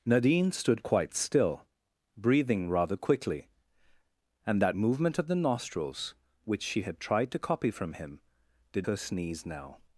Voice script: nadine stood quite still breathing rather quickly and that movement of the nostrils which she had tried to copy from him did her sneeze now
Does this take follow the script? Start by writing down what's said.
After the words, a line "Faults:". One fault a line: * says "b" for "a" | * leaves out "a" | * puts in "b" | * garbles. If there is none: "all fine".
nadine stood quite still breathing rather quickly and that movement of the nostrils which she had tried to copy from him did her sneeze now
Faults:
all fine